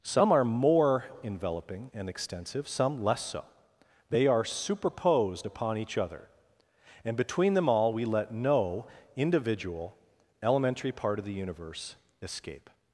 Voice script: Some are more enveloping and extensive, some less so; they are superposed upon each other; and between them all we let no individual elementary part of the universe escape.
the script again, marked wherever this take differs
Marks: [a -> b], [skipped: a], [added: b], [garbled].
Some are more enveloping and extensive, some less so; they are superposed upon each other; and between them all we let no individual elementary part of the universe escape.